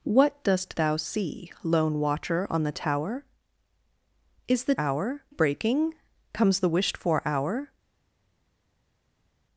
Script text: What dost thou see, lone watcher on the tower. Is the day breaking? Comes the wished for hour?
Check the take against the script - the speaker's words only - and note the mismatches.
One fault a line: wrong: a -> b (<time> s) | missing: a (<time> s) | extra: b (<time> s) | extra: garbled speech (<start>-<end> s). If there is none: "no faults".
wrong: day -> hour (4.8 s)